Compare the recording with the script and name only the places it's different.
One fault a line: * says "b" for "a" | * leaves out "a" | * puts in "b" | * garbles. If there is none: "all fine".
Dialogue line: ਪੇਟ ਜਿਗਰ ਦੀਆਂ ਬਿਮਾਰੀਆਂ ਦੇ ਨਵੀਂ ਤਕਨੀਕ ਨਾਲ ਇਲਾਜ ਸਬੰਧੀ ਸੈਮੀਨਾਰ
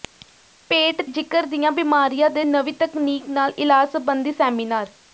all fine